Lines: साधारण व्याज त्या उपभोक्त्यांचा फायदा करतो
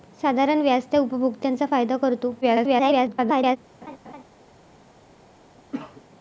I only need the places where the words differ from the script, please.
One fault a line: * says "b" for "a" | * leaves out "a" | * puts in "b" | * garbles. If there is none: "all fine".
* garbles